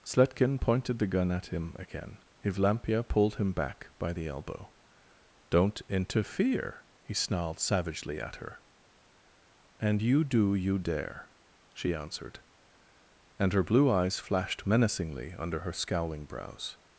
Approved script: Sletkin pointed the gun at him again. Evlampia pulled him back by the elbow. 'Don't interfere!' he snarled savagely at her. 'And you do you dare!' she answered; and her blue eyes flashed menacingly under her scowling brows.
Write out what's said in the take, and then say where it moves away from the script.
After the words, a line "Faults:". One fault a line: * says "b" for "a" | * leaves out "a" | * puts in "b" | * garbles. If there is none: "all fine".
Sletkin pointed the gun at him again. Evlampia pulled him back by the elbow. 'Don't interfere!' he snarled savagely at her. 'And you do you dare!' she answered; and her blue eyes flashed menacingly under her scowling brows.
Faults:
all fine